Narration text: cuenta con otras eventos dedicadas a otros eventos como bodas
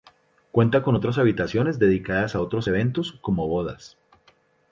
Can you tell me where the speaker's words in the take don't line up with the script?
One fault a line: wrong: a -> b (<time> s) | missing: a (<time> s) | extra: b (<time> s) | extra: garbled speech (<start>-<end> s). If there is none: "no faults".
wrong: eventos -> habitaciones (1.2 s)